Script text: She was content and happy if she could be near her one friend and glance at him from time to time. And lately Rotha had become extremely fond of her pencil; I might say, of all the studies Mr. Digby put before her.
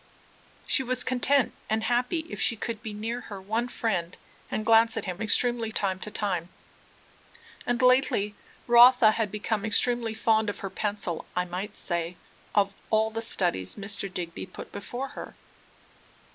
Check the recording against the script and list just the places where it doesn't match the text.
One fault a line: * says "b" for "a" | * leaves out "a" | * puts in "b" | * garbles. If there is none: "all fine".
* says "extremely" for "from"